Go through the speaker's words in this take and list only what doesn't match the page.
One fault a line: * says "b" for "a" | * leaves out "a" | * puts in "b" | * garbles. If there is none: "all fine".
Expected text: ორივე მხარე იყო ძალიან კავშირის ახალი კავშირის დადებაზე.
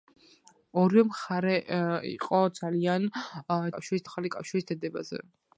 all fine